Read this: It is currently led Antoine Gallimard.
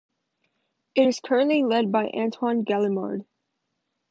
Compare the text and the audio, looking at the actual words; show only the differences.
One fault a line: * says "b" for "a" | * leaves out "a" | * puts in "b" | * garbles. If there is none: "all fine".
* puts in "by"